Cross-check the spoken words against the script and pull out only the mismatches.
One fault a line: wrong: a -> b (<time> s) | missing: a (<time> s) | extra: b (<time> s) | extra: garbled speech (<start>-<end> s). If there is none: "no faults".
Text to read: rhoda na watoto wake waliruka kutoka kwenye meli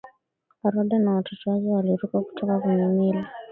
no faults